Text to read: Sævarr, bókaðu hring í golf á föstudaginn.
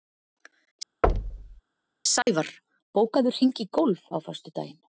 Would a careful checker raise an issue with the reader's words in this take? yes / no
no